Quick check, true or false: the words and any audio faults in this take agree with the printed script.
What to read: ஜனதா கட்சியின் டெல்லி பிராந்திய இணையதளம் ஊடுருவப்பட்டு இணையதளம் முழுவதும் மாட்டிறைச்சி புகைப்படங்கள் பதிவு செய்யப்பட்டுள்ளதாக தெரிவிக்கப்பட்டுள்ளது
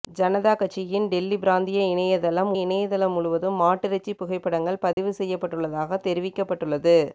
false